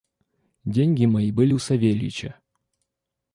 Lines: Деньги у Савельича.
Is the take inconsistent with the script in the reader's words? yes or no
yes